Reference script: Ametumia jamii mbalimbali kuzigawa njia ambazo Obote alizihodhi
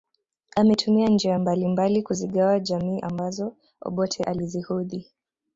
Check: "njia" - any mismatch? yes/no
yes